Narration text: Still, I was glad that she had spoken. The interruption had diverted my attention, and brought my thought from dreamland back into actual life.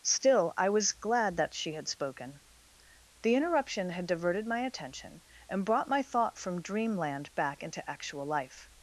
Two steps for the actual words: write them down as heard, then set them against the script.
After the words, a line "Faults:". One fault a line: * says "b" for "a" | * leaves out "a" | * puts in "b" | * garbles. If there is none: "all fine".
Still, I was glad that she had spoken. The interruption had diverted my attention, and brought my thought from dreamland back into actual life.
Faults:
all fine